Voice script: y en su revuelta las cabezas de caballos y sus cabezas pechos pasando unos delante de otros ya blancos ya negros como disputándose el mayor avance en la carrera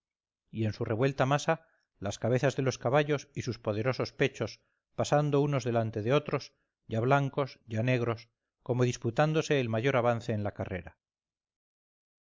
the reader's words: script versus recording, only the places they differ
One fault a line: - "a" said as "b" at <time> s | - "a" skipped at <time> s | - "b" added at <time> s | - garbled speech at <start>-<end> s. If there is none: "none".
- "masa" added at 1.3 s
- "los" added at 2.6 s
- "cabezas" said as "poderosos" at 3.6 s